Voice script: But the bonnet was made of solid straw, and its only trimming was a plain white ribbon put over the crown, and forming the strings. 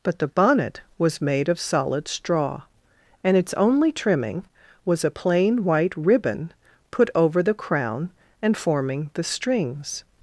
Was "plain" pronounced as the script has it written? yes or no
yes